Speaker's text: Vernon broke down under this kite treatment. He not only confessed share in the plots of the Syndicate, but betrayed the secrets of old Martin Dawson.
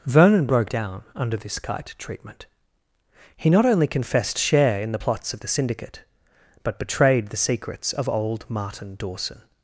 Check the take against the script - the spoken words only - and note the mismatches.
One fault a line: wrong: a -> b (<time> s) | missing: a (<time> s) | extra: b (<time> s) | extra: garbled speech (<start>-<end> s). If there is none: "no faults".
no faults